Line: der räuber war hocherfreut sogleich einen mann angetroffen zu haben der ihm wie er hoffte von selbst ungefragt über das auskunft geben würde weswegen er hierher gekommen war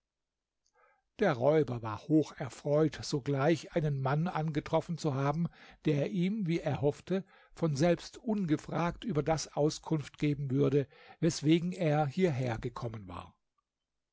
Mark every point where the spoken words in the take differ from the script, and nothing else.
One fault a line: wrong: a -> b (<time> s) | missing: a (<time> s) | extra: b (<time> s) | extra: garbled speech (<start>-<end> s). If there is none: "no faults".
no faults